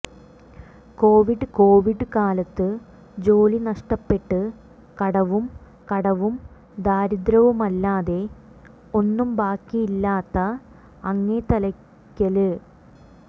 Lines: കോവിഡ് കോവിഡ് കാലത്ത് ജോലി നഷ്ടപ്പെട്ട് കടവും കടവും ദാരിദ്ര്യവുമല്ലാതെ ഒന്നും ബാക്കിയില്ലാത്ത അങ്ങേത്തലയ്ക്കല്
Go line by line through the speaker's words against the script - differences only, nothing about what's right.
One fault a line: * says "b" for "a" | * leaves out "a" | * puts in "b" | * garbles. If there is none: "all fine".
all fine